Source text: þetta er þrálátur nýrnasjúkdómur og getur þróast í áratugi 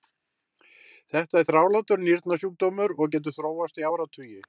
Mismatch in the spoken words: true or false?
false